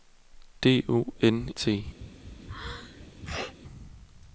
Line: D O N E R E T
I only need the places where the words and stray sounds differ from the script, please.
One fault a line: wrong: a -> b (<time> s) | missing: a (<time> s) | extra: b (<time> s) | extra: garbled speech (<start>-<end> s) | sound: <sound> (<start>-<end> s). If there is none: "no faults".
missing: E R E (1.5 s)
sound: sneeze (2.0-3.5 s)